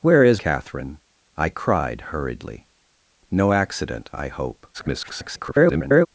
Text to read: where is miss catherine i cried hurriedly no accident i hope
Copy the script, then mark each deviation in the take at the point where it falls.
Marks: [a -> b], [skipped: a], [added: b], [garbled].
where is [skipped: miss] catherine i cried hurriedly no accident i hope [garbled]